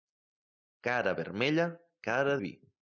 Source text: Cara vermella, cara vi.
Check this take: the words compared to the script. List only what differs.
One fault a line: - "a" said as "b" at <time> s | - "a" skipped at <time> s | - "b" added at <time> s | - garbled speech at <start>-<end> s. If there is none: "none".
none